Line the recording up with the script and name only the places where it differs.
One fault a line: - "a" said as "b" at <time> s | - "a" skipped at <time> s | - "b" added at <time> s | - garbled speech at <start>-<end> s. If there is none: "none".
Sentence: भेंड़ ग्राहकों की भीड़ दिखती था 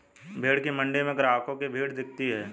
- "की मण्डी में" added at 0.6 s
- "था" said as "है" at 2.3 s